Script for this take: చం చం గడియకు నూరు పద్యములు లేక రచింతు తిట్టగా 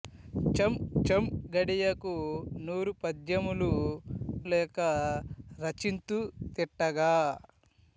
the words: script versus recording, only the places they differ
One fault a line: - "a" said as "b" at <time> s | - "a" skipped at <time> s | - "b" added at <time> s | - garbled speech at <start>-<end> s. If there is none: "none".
none